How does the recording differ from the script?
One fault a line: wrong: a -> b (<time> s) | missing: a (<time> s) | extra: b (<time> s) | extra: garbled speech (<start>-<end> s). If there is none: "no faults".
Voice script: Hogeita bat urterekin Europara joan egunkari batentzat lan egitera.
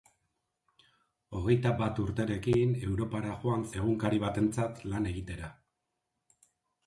no faults